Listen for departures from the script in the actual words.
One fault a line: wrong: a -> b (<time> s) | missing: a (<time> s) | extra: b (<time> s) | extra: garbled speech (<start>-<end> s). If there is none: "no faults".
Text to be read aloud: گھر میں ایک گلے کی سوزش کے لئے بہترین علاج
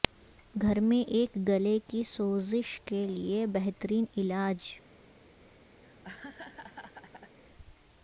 no faults